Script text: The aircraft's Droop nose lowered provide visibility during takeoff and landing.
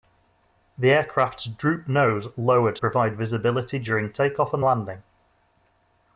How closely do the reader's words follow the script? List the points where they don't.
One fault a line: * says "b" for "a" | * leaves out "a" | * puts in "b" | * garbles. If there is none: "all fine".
all fine